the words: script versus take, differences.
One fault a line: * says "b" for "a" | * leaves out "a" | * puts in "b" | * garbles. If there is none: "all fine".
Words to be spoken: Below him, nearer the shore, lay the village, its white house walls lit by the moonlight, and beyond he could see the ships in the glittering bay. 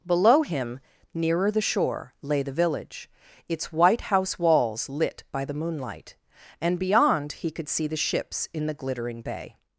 all fine